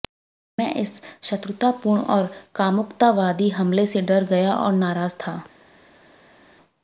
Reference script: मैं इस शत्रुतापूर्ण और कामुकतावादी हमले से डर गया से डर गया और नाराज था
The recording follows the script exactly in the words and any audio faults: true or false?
false